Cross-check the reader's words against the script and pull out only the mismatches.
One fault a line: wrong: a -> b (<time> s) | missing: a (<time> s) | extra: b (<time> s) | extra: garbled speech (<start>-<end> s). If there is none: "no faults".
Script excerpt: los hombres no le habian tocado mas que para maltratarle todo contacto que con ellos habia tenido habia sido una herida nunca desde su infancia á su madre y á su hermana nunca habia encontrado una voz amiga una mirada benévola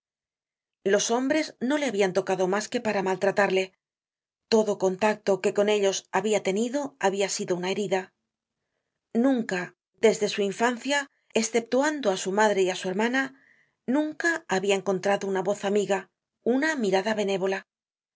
extra: esceptuando (11.4 s)